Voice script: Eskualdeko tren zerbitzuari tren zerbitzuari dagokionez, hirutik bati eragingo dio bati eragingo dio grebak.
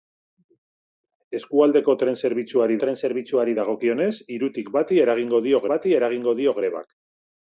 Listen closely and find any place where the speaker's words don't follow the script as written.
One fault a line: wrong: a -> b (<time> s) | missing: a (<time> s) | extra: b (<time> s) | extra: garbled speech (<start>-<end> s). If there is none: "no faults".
no faults